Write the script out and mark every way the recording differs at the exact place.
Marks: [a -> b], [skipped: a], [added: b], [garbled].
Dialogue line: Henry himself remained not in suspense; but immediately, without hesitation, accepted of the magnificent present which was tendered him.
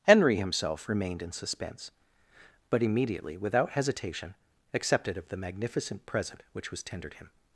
Henry himself remained [skipped: not] in suspense; but immediately, without hesitation, accepted of the magnificent present which was tendered him.